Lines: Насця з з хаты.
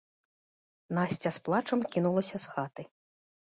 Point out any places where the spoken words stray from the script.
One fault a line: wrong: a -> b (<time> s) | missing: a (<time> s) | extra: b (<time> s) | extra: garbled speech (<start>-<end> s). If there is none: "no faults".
extra: плачам кінулася (1.5 s)